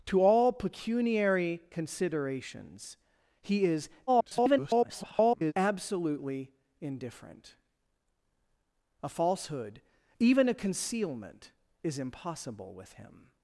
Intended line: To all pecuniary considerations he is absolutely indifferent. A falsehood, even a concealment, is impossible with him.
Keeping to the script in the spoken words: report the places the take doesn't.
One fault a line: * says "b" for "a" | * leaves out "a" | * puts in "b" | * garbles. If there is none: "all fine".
* garbles